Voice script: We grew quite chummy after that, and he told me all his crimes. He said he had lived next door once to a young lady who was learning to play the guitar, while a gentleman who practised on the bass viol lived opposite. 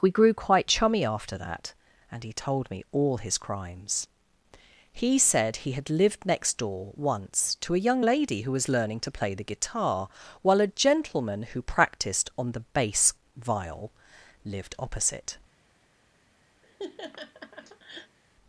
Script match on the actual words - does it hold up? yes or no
yes